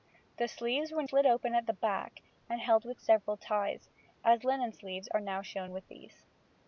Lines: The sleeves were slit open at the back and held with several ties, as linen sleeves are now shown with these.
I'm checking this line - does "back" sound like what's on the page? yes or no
yes